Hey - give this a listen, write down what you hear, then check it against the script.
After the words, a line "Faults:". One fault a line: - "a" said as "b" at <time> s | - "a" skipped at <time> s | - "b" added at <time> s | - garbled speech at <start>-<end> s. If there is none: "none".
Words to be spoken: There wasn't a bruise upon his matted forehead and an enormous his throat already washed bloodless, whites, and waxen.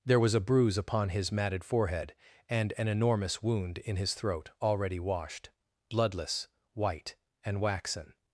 There was a bruise upon his matted forehead and an enormous wound in his throat already washed bloodless, white, and waxen.
Faults:
- "wasn't" said as "was" at 0.2 s
- "wound in" added at 3.4 s
- "whites" said as "white" at 6.7 s